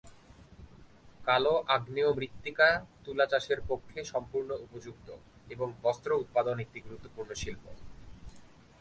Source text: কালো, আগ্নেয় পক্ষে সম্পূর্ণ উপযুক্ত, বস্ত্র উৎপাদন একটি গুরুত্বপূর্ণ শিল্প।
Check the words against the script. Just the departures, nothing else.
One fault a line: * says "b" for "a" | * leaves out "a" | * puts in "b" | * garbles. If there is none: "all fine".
* puts in "মৃত্তিকা তুলা চাষের"
* puts in "এবং"